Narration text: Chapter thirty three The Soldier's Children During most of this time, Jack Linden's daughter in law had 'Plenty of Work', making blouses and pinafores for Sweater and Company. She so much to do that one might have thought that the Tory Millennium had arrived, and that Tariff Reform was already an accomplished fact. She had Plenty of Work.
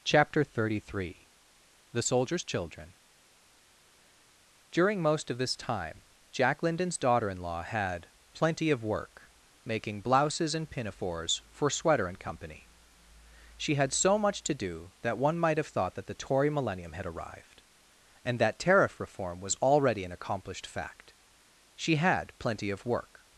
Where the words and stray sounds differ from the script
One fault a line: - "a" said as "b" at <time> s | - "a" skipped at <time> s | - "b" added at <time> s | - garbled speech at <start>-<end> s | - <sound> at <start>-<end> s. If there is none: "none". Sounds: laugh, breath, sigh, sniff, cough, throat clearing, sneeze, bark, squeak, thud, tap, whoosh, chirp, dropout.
- "had" added at 13.8 s